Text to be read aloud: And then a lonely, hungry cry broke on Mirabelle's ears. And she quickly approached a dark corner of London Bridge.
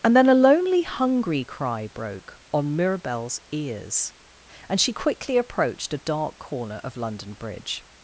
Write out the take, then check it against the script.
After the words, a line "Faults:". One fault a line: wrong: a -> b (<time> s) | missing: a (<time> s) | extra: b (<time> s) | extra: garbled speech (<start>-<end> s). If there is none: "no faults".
And then a lonely, hungry cry broke on Mirabelle's ears. And she quickly approached a dark corner of London Bridge.
Faults:
no faults